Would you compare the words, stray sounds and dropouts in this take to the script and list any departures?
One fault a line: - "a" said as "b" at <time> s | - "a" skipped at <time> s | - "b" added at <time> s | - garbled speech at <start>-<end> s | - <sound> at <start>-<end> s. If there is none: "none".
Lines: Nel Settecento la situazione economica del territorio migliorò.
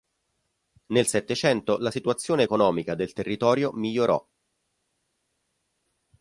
none